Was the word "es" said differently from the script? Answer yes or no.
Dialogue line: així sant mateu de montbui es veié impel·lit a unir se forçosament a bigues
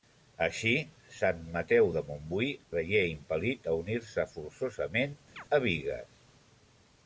yes